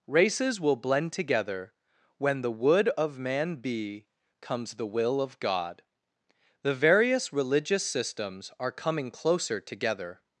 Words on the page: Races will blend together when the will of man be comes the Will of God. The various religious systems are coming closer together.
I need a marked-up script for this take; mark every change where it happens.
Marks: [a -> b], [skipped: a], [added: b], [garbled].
Races will blend together when the [will -> would] of man be comes the Will of God. The various religious systems are coming closer together.